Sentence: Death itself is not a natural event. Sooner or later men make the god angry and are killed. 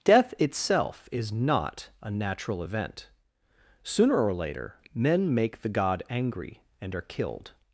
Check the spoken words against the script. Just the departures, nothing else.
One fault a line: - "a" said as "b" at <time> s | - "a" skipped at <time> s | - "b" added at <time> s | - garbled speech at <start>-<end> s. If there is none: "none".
none